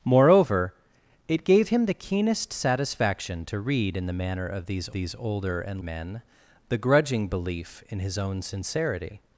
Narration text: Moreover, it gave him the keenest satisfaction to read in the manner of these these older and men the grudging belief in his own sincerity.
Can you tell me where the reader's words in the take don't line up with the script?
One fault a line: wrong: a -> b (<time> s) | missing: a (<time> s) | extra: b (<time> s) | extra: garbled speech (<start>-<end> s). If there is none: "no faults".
no faults